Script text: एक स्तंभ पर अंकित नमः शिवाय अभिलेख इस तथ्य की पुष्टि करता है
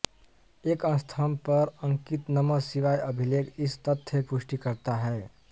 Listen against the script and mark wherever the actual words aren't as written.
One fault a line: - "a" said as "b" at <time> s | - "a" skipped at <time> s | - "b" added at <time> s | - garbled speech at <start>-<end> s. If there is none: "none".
- "की" skipped at 4.2 s